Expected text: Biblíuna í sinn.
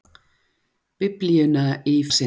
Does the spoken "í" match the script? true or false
true